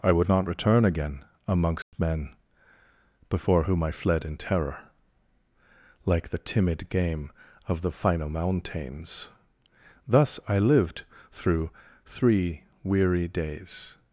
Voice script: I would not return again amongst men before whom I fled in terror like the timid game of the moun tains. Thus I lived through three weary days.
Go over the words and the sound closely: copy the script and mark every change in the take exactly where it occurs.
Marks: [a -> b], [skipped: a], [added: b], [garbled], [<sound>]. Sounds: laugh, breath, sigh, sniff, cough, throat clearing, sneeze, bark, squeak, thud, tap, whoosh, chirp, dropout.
I would not return again amongst [dropout] men before whom I fled in terror like the timid game of the [moun tains. -> final mountains] Thus I lived through three weary days.